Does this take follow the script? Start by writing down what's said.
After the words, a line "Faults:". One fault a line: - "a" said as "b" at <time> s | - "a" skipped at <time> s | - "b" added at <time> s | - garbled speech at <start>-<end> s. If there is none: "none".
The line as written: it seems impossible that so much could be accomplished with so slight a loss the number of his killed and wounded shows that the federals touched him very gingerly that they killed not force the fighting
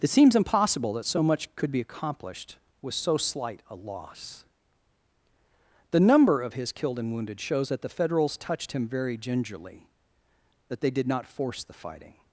it seems impossible that so much could be accomplished with so slight a loss the number of his killed and wounded shows that the federals touched him very gingerly that they did not force the fighting
Faults:
- "killed" said as "did" at 10.9 s